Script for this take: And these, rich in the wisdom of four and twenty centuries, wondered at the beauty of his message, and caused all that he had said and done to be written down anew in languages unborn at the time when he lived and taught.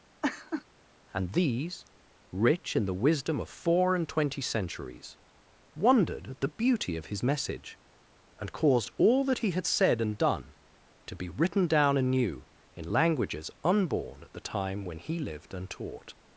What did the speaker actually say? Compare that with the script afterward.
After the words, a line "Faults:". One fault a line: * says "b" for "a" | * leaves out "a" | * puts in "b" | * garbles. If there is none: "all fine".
And these, rich in the wisdom of four and twenty centuries, wondered at the beauty of his message, and caused all that he had said and done to be written down anew in languages unborn at the time when he lived and taught.
Faults:
all fine